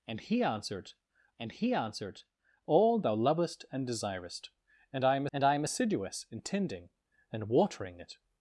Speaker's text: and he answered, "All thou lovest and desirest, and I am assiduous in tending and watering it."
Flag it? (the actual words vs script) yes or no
yes